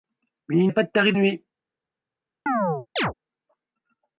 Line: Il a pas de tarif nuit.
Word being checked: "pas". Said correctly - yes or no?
yes